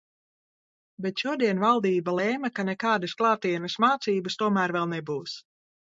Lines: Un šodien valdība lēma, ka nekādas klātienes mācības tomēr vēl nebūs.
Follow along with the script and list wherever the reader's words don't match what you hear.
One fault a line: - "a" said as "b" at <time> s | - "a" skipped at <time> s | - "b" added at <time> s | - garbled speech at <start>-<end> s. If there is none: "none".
- "Un" said as "Bet" at 1.1 s